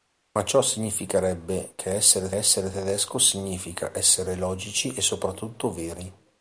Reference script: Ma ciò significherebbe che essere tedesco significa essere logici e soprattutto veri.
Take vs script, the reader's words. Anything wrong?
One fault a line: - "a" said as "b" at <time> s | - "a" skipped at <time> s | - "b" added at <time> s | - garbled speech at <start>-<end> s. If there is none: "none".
- "essere" added at 2.3 s